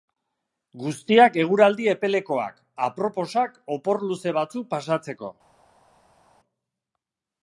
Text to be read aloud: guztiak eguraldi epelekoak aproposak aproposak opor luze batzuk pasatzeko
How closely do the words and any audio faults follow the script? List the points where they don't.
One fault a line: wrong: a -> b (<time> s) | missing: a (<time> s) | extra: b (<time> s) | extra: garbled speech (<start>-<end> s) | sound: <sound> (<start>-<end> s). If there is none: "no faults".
missing: aproposak (3.6 s)